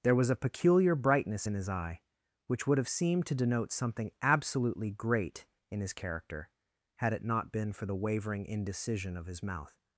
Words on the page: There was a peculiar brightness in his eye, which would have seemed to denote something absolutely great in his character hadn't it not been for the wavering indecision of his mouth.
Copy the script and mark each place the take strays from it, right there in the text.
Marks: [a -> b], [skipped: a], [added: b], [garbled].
There was a peculiar brightness in his eye, which would have seemed to denote something absolutely great in his character [hadn't -> had] it not been for the wavering indecision of his mouth.